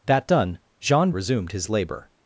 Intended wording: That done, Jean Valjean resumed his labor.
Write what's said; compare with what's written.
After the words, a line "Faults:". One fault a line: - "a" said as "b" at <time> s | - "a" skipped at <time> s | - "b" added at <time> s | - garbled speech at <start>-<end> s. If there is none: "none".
That done, Jean Resumed his labor.
Faults:
- "Valjean" skipped at 1.1 s